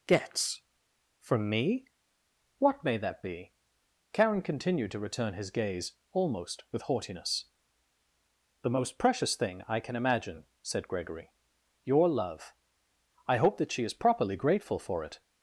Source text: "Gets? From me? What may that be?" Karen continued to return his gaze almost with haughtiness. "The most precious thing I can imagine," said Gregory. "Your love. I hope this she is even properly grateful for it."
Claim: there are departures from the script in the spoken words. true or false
true